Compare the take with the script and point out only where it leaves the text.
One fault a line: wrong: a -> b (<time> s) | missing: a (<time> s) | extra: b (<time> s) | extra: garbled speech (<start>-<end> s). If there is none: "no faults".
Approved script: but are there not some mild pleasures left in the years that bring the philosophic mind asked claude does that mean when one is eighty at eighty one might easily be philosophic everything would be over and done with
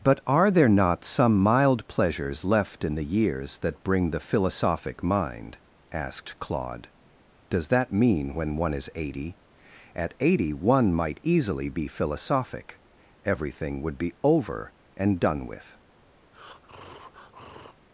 no faults